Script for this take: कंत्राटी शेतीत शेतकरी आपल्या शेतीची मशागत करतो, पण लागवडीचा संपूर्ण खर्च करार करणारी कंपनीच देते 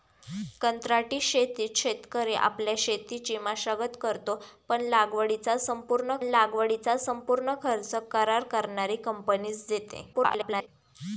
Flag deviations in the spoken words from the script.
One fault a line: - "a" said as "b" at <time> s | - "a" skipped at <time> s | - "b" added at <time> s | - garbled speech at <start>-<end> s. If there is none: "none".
- "लागवडीचा संपूर्ण" added at 6.2 s
- garbled speech at 10.1-10.7 s